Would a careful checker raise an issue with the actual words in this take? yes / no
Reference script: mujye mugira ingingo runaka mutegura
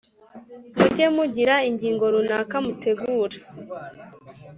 no